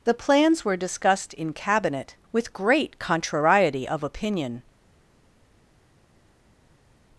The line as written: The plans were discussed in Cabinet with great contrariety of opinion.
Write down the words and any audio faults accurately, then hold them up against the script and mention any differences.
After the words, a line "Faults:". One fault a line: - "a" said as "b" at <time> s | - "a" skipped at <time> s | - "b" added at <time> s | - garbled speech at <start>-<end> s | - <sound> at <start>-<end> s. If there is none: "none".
The plans were discussed in Cabinet with great contrariety of opinion.
Faults:
none